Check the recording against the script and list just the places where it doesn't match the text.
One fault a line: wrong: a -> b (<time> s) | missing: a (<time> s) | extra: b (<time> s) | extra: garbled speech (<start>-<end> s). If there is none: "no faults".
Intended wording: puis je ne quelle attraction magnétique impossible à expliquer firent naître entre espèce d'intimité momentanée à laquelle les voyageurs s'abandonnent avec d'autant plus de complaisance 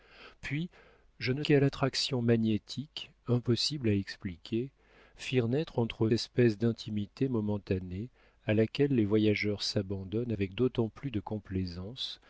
no faults